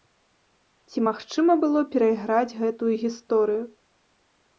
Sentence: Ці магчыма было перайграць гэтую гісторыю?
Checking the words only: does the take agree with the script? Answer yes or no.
yes